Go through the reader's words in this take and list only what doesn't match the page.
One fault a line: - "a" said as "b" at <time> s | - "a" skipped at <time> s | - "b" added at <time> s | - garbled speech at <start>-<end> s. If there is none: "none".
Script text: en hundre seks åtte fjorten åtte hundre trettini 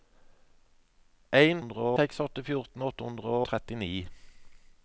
none